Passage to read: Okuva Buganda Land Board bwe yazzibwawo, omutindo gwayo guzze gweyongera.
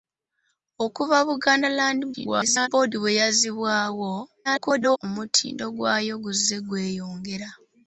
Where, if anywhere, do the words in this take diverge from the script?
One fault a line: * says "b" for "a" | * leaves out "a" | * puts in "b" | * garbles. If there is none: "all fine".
* garbles
* garbles